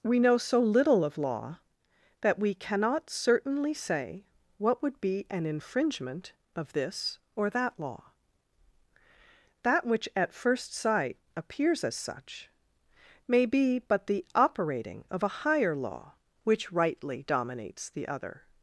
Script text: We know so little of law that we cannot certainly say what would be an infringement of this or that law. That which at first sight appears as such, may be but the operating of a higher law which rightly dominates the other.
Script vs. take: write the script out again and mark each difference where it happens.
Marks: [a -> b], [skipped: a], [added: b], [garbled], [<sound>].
We know so little of law that we cannot certainly say what would be an infringement of this or that law. That which at first sight appears as such, may be but the operating of a higher law which rightly dominates the other.